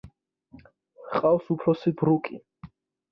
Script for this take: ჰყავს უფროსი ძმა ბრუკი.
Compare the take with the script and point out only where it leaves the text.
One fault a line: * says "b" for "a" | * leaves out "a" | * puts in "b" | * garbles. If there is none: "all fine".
* leaves out "ძმა"